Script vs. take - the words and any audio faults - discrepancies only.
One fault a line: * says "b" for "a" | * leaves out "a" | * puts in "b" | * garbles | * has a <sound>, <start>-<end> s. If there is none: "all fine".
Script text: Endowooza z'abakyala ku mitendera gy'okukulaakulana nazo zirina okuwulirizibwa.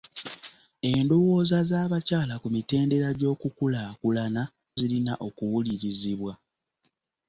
* leaves out "nazo"